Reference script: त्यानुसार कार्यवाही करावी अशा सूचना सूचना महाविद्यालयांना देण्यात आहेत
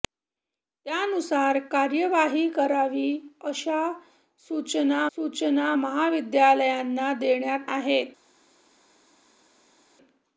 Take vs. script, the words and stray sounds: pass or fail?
pass